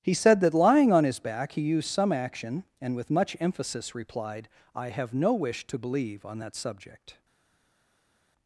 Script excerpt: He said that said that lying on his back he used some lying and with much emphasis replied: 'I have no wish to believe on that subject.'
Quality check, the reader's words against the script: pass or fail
fail